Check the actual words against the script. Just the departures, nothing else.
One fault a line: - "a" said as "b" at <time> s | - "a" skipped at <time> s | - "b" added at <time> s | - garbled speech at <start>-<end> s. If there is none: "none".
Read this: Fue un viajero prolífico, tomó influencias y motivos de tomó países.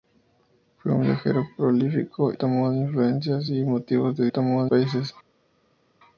none